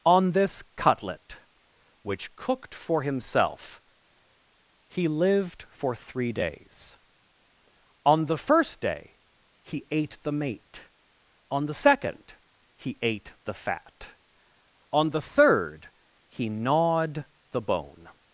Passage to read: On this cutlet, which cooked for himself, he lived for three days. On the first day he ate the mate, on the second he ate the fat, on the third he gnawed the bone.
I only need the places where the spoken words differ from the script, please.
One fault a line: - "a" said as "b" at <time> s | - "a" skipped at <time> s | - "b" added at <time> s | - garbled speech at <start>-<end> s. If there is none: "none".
none